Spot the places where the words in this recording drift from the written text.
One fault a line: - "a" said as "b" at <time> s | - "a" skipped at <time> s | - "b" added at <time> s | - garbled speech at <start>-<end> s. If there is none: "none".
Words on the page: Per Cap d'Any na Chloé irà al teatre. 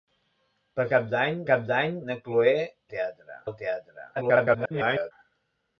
- "Cap d'Any" added at 1.5 s
- "irà" said as "teatre" at 2.9 s
- garbled speech at 4.2-5.1 s